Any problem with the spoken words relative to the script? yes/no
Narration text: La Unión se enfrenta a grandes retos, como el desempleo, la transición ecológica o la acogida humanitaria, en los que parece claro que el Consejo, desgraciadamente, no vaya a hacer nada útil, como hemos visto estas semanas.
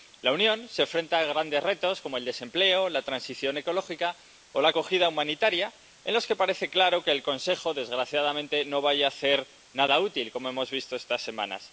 no